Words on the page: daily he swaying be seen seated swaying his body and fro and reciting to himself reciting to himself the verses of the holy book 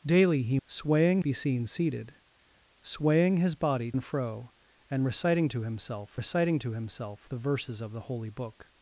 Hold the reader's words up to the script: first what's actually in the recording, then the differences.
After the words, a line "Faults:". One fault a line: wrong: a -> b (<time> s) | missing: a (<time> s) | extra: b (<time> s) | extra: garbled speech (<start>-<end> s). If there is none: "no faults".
daily he swaying be seen seated swaying his body and fro and reciting to himself reciting to himself the verses of the holy book
Faults:
no faults